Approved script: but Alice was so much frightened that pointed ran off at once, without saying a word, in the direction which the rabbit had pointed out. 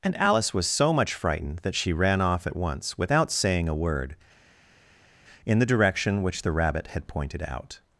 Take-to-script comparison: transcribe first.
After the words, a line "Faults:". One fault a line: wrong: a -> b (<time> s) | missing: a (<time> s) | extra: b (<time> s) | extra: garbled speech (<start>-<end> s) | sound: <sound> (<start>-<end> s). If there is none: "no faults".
and Alice was so much frightened that she ran off at once, without saying a word, in the direction which the rabbit had pointed out.
Faults:
wrong: but -> and (0.0 s)
wrong: pointed -> she (1.8 s)